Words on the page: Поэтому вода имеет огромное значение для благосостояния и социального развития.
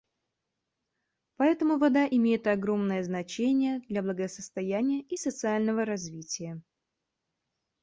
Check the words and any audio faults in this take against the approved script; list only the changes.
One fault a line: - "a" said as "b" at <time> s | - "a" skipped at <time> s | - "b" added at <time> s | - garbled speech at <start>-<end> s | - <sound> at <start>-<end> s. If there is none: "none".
none